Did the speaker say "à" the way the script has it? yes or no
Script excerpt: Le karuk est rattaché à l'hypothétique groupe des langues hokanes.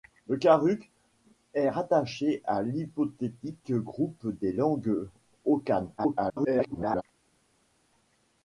yes